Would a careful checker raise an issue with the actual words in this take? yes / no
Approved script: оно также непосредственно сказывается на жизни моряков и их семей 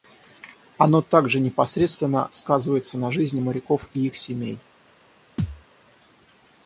no